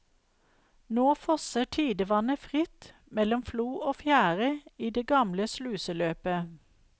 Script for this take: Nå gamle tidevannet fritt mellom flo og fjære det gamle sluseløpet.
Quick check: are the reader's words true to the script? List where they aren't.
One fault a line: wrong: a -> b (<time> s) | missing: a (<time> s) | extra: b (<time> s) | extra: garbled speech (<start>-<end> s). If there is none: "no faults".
wrong: gamle -> fosser (1.1 s)
extra: i (4.8 s)